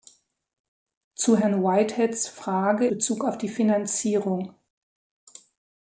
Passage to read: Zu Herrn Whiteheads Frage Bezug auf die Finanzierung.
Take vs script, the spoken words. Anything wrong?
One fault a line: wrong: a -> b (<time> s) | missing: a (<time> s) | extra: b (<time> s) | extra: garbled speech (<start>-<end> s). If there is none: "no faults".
no faults